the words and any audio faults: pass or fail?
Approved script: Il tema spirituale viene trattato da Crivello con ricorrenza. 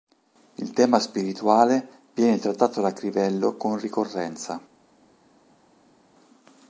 pass